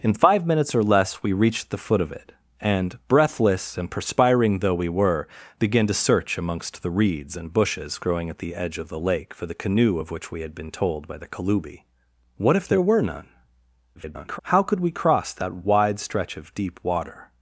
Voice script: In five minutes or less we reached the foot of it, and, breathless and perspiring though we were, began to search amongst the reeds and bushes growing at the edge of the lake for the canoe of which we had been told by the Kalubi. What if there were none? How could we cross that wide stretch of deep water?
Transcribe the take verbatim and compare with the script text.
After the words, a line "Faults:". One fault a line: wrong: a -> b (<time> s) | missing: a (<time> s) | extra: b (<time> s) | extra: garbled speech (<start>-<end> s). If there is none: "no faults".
In five minutes or less we reached the foot of it, and, breathless and perspiring though we were, began to search amongst the reeds and bushes growing at the edge of the lake for the canoe of which we had been told by the Kalubi. What if there were none? [garbled] How could we cross that wide stretch of deep water?
Faults:
extra: garbled speech (13.9-14.4 s)